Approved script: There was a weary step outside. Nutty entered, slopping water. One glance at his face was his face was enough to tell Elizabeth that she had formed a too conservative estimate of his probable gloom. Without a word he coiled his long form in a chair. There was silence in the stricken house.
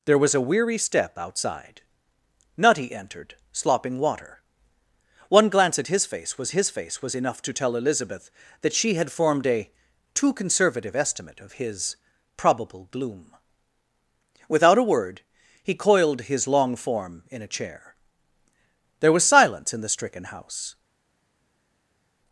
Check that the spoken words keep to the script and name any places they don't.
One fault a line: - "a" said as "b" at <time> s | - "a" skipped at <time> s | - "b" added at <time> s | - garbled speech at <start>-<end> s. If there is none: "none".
none